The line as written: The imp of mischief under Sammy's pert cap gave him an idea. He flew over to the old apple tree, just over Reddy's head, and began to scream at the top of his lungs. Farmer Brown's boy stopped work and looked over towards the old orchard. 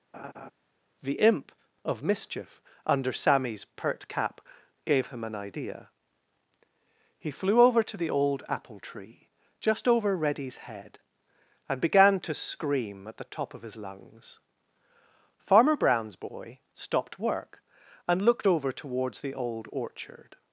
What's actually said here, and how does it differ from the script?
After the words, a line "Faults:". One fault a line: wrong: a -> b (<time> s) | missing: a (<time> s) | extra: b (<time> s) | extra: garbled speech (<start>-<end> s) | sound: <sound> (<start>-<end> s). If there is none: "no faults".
The imp of mischief under Sammy's pert cap gave him an idea. He flew over to the old apple tree, just over Reddy's head, and began to scream at the top of his lungs. Farmer Brown's boy stopped work and looked over towards the old orchard.
Faults:
sound: laugh (0.1-0.5 s)